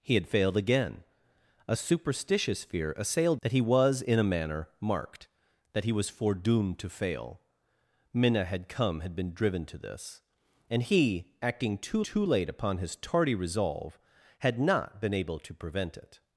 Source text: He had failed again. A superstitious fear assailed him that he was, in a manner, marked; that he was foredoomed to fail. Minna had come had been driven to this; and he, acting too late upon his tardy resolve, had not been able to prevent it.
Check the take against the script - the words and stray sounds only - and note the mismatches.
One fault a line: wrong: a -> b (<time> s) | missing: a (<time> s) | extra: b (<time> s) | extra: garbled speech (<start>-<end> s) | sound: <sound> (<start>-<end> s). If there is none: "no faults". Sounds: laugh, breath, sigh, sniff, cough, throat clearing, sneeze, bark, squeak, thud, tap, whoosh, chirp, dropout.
missing: him (3.4 s)
extra: too (12.0 s)